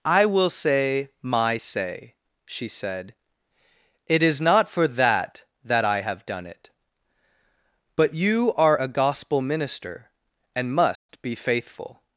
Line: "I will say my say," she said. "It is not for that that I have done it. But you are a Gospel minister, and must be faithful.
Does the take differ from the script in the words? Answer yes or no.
no